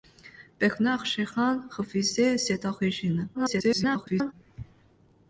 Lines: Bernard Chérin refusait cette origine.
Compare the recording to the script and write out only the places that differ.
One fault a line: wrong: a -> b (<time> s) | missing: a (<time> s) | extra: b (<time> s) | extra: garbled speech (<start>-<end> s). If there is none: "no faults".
extra: garbled speech (3.3-4.3 s)